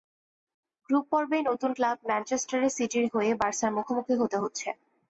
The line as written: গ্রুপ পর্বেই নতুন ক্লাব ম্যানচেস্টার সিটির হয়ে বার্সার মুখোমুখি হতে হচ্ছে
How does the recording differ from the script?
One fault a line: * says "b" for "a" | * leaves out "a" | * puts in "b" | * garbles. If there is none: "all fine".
all fine